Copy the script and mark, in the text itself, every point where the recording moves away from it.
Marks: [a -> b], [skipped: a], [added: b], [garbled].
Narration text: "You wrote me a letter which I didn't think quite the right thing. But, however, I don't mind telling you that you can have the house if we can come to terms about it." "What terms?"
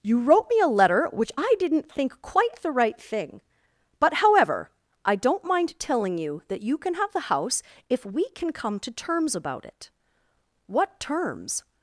"You wrote me a letter which I didn't think quite the right thing. But, however, I don't mind telling you that you can have the house if we can come to terms about it." "What terms?"